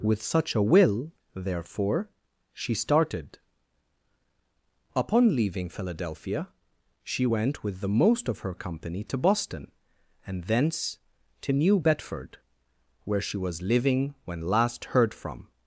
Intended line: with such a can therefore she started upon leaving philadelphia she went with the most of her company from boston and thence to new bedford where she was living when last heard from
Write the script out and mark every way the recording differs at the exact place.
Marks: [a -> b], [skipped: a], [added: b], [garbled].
with such a [can -> will] therefore she started upon leaving philadelphia she went with the most of her company [from -> to] boston and thence to new bedford where she was living when last heard from